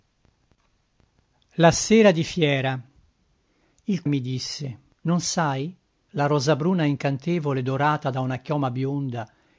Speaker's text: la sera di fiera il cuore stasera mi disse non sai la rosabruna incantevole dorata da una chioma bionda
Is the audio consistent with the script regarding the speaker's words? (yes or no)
no